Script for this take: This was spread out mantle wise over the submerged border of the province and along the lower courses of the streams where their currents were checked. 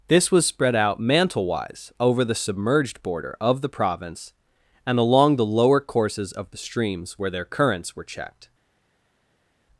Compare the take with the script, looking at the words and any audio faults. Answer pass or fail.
pass